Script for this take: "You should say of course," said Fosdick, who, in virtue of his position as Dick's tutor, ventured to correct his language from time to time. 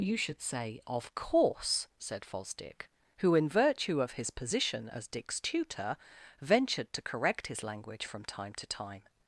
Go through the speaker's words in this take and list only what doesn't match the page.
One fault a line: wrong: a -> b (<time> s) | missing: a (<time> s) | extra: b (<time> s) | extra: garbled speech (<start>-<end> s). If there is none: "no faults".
no faults